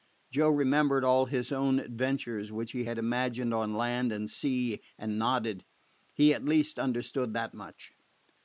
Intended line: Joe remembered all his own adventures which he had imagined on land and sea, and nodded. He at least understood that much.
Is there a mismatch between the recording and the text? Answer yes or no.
no